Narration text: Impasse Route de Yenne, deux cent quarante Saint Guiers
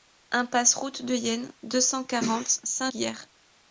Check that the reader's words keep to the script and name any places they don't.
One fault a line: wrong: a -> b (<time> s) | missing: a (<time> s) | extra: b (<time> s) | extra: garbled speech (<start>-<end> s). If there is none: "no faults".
no faults